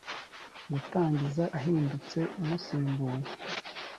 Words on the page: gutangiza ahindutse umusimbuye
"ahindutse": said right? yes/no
yes